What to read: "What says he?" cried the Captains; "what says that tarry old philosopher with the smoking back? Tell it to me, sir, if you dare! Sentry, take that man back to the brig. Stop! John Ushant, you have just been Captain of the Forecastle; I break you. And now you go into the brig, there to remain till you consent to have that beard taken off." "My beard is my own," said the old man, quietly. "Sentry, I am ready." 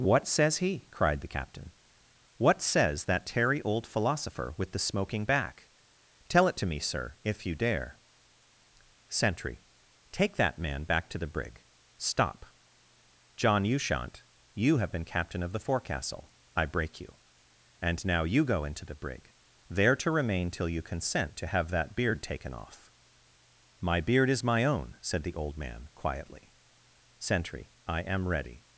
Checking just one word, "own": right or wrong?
right